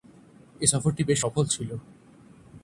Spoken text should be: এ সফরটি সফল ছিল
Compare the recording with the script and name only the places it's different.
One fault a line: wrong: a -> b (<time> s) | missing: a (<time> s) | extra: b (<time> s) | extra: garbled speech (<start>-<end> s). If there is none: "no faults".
extra: বেশ (1.0 s)